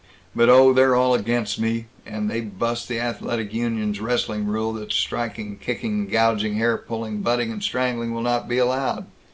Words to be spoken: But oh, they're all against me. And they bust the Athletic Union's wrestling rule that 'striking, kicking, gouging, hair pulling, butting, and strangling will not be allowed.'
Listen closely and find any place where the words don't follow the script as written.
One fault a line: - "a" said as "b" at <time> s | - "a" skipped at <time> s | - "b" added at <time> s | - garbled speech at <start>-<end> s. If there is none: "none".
none